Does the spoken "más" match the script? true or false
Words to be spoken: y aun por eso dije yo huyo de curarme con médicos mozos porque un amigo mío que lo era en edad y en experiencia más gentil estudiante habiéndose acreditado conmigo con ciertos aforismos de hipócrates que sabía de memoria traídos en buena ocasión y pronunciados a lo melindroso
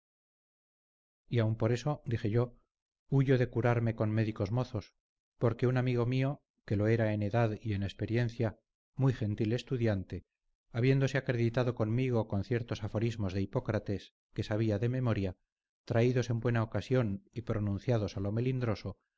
false